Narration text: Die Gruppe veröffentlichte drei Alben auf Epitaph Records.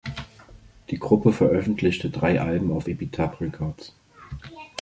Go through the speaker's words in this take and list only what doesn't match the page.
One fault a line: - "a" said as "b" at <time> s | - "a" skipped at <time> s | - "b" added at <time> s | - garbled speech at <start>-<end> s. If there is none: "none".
none